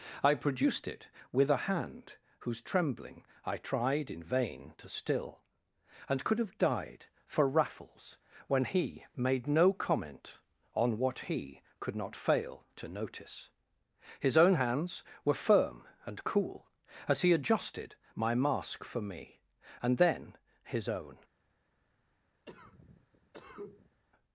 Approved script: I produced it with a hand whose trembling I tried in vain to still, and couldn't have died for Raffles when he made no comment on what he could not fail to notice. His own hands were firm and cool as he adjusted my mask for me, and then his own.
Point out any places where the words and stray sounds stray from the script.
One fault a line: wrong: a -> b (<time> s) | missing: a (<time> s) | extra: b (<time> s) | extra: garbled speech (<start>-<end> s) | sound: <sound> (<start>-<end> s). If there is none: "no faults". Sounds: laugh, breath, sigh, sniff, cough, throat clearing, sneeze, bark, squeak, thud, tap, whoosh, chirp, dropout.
wrong: couldn't -> could (6.2 s)
sound: cough (22.5-24.0 s)